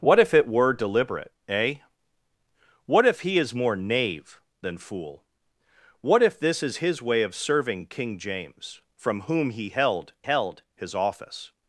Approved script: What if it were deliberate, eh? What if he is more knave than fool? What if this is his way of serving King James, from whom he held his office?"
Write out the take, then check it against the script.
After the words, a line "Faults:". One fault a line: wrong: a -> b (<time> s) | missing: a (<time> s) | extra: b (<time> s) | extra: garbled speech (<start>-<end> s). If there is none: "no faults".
What if it were deliberate, eh? What if he is more knave than fool? What if this is his way of serving King James, from whom he held held his office?"
Faults:
extra: held (10.2 s)